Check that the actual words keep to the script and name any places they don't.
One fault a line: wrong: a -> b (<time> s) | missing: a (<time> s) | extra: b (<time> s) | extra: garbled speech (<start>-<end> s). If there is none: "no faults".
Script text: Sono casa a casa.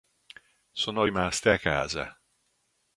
wrong: casa -> rimaste (1.0 s)